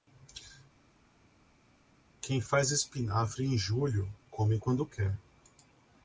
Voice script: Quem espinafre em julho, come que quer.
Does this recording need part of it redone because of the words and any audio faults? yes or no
yes